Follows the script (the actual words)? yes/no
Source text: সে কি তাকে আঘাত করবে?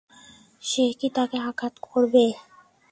yes